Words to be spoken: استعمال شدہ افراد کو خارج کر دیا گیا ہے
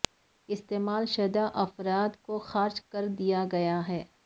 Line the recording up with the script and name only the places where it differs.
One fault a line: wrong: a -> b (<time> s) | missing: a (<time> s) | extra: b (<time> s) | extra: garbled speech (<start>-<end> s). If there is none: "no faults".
no faults